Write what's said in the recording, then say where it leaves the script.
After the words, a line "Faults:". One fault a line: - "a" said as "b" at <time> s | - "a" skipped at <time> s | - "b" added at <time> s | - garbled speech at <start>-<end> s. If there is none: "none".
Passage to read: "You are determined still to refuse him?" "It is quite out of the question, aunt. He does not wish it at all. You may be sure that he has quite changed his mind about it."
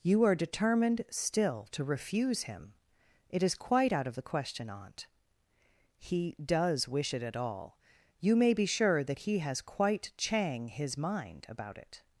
"You are determined still to refuse him?" "It is quite out of the question, aunt. He does wish it at all. You may be sure that he has quite chang his mind about it."
Faults:
- "not" skipped at 6.9 s
- "changed" said as "chang" at 10.2 s